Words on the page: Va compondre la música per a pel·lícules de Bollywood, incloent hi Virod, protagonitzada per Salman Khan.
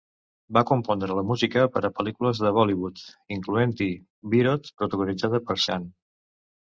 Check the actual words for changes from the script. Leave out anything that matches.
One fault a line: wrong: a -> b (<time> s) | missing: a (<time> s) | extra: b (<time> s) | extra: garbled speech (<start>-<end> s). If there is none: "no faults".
missing: Salman (5.6 s)